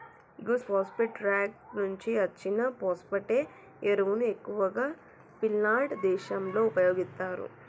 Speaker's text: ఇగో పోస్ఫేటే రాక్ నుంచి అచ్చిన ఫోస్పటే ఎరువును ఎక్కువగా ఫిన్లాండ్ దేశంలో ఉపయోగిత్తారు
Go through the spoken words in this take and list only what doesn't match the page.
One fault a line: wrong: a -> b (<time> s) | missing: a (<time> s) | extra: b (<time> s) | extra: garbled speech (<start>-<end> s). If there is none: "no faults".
no faults